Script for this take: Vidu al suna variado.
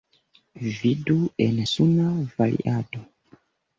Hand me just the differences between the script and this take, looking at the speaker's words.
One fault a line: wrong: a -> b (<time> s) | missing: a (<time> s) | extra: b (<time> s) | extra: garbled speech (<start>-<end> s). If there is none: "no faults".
wrong: al -> en (1.5 s)